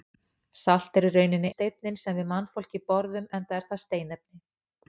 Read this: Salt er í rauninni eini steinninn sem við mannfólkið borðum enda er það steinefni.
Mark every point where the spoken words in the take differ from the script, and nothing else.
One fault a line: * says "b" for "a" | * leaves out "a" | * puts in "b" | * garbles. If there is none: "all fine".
* leaves out "eini"